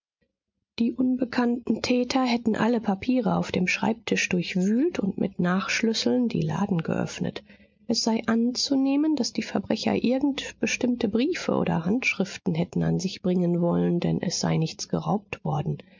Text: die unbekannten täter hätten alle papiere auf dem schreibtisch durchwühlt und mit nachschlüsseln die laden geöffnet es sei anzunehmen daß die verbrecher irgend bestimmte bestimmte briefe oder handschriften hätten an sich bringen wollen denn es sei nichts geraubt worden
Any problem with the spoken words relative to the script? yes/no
yes